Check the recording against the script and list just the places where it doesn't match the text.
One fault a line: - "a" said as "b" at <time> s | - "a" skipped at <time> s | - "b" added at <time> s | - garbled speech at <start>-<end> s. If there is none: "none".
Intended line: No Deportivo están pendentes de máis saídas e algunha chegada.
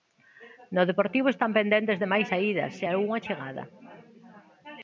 none